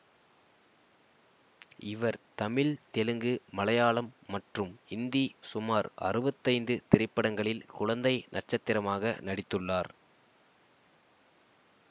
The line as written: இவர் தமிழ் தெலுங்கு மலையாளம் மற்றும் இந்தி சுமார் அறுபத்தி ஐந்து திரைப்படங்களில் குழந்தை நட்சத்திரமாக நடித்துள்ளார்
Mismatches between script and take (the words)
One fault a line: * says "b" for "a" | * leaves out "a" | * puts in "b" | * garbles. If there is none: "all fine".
all fine